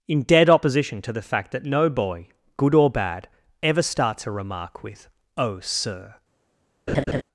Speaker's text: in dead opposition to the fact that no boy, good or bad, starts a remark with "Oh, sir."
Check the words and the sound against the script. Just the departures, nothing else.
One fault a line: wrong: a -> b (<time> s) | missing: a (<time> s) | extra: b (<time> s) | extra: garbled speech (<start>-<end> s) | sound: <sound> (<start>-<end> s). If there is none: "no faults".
extra: ever (3.6 s)
sound: laugh (6.9-7.2 s)